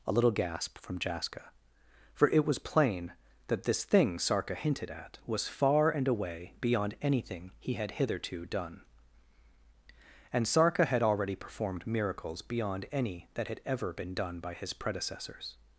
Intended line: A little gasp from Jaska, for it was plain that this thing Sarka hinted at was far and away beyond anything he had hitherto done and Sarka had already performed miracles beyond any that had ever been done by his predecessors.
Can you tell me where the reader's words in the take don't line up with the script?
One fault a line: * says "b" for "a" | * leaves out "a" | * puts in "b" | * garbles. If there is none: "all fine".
all fine